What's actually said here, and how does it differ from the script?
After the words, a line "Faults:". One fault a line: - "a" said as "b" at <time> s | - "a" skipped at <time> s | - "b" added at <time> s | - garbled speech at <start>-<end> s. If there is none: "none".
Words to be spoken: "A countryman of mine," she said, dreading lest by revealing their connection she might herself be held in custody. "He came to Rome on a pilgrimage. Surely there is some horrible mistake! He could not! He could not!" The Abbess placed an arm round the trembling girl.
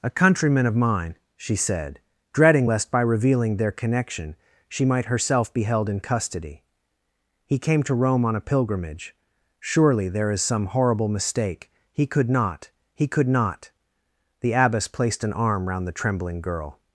"A countryman of mine," she said, dreading lest by revealing their connection she might herself be held in custody. "He came to Rome on a pilgrimage. Surely there is some horrible mistake! He could not! He could not!" The Abbess placed an arm round the trembling girl.
Faults:
none